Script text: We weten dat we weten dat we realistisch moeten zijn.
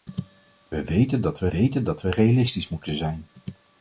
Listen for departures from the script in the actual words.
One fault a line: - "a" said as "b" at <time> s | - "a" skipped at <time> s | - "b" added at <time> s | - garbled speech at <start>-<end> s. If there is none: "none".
none